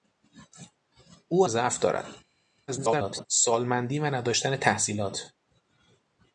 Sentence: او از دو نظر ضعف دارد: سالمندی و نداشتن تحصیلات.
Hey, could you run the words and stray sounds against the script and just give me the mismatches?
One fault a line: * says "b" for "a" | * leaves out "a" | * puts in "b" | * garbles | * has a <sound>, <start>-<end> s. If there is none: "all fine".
* leaves out "از دو نظر"
* garbles